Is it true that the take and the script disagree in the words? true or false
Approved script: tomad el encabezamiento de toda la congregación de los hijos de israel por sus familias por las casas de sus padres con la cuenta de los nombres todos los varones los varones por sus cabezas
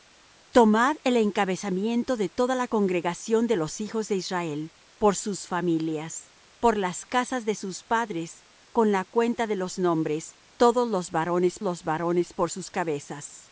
false